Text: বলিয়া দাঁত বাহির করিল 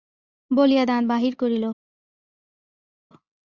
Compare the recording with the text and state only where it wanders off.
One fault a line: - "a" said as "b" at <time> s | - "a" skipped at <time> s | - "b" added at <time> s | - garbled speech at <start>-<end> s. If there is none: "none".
none